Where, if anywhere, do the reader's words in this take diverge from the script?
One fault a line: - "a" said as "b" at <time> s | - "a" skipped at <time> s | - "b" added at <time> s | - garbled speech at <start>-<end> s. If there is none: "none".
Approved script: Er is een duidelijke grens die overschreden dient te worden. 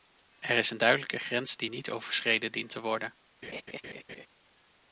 - "niet" added at 1.7 s